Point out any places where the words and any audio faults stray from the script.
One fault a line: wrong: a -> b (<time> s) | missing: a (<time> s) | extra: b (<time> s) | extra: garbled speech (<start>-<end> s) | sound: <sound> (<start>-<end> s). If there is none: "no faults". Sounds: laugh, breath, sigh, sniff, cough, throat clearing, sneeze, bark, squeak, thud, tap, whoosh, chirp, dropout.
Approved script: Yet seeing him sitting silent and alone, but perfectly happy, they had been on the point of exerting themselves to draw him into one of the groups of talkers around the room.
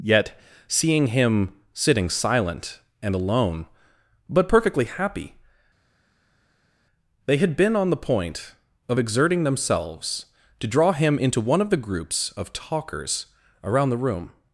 no faults